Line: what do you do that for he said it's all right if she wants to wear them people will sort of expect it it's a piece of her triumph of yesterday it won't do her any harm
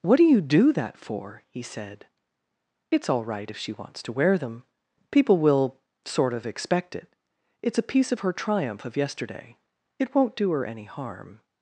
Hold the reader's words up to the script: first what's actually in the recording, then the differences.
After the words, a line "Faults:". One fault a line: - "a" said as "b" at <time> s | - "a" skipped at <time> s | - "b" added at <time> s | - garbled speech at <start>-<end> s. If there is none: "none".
what do you do that for he said it's all right if she wants to wear them people will sort of expect it it's a piece of her triumph of yesterday it won't do her any harm
Faults:
none